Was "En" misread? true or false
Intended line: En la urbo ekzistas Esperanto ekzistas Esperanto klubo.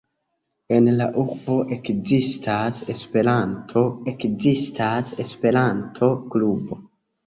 false